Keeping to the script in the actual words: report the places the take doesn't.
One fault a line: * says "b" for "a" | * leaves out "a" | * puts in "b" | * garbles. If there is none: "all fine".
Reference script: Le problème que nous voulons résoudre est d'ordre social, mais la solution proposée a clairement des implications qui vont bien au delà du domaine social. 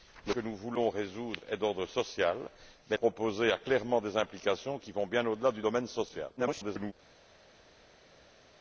* leaves out "problème"
* leaves out "la solution"
* garbles